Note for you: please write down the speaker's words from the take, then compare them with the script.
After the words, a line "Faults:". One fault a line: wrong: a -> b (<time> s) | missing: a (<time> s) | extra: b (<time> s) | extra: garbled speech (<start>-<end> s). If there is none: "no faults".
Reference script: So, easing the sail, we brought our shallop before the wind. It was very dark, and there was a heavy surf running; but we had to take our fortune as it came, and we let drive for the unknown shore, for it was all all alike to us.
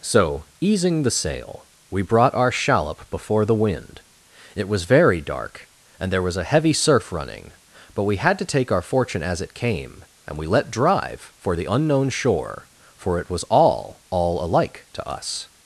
So, easing the sail, we brought our shallop before the wind. It was very dark, and there was a heavy surf running; but we had to take our fortune as it came, and we let drive for the unknown shore, for it was all all alike to us.
Faults:
no faults